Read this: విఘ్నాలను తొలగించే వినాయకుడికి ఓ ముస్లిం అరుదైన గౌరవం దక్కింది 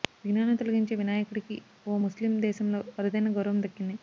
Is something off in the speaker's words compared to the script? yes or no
yes